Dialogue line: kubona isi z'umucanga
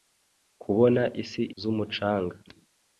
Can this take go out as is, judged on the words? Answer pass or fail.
pass